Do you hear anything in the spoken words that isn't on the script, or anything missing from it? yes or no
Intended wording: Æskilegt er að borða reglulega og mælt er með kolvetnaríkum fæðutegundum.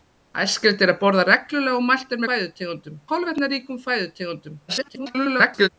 yes